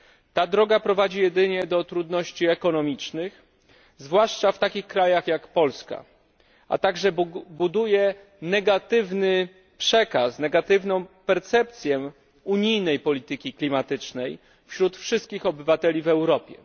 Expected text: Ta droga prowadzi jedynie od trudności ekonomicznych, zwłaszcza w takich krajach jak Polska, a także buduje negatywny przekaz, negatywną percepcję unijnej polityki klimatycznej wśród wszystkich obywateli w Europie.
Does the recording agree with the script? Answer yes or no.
no